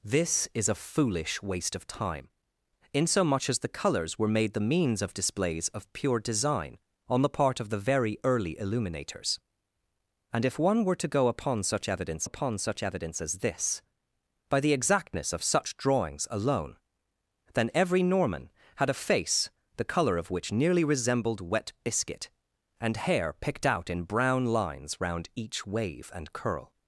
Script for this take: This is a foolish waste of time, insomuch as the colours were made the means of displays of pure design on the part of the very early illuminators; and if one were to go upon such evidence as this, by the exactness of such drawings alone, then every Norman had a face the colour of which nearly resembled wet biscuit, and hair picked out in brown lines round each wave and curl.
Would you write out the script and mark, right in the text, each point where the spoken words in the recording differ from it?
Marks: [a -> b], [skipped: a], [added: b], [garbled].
This is a foolish waste of time, insomuch as the colours were made the means of displays of pure design on the part of the very early illuminators; and if one were to go upon such evidence [added: upon such evidence] as this, by the exactness of such drawings alone, then every Norman had a face the colour of which nearly resembled wet biscuit, and hair picked out in brown lines round each wave and curl.